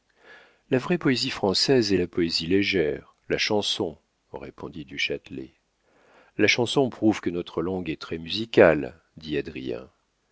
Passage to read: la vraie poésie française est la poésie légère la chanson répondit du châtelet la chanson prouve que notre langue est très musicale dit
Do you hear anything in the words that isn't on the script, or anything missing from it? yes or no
no